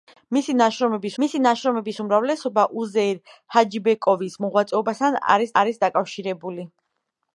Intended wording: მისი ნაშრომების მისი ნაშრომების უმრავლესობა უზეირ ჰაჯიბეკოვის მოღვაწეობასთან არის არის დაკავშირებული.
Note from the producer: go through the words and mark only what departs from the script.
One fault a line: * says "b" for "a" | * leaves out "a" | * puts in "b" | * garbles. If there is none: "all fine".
all fine